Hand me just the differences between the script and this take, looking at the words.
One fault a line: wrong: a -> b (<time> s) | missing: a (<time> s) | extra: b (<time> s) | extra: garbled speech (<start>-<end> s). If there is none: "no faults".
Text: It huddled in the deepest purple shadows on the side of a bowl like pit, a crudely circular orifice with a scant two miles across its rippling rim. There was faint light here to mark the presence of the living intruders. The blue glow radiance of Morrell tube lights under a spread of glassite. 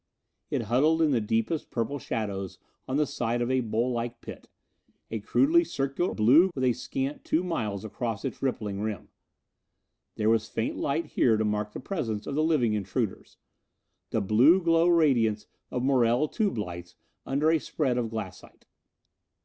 wrong: orifice -> blue (6.1 s)